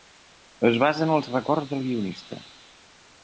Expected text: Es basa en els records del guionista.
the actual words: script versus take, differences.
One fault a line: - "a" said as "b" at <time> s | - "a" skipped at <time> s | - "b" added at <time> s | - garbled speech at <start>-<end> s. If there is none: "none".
none